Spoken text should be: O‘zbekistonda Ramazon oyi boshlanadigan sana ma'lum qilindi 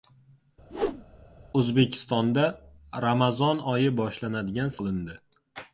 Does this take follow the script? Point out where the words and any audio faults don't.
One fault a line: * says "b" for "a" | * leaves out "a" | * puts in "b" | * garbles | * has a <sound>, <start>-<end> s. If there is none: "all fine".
* has a whoosh, 0.7-1.0 s
* leaves out "sana ma'lum"